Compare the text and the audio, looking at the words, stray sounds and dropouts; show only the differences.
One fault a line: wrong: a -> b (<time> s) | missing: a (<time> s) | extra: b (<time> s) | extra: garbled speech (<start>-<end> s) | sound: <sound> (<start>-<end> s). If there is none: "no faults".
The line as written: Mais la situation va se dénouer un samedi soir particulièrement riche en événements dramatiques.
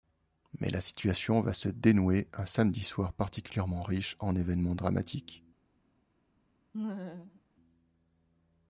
sound: laugh (6.7-7.4 s)